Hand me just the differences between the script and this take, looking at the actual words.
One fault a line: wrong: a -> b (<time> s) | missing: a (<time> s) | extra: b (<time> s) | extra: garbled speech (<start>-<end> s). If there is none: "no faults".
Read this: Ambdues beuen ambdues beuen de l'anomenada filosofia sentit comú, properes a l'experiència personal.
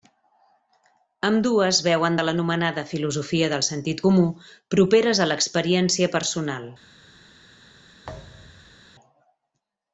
missing: ambdues beuen (2.2 s)
extra: del (3.5 s)